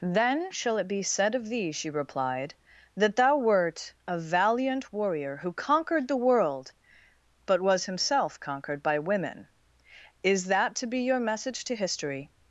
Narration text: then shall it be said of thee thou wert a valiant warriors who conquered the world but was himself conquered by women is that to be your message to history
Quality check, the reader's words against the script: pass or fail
fail